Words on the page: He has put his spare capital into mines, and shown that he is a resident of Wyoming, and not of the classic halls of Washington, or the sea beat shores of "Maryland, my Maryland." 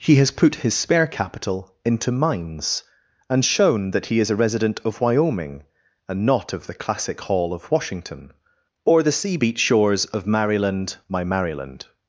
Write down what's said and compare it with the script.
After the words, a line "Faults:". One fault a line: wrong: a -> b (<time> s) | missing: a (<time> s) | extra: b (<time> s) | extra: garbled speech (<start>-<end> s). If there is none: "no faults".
He has put his spare capital into mines, and shown that he is a resident of Wyoming, and not of the classic hall of Washington, or the sea beat shores of "Maryland, my Maryland."
Faults:
wrong: halls -> hall (7.2 s)